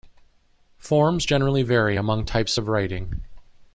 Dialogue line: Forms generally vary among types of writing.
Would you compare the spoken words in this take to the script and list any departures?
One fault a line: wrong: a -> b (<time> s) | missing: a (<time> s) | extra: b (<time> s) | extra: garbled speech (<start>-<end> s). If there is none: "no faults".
no faults